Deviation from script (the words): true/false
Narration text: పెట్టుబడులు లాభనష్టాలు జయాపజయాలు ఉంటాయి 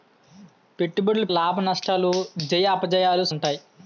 false